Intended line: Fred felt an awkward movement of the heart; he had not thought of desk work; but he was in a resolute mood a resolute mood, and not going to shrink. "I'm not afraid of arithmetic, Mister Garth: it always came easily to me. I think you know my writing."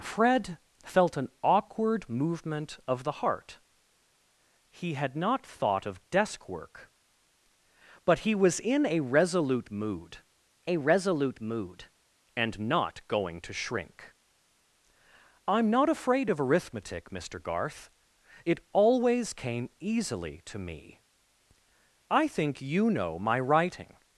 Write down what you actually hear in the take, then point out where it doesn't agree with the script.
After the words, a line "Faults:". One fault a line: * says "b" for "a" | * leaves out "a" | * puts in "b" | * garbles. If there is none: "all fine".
Fred felt an awkward movement of the heart; he had not thought of desk work; but he was in a resolute mood a resolute mood, and not going to shrink. "I'm not afraid of arithmetic, Mister Garth: it always came easily to me. I think you know my writing."
Faults:
all fine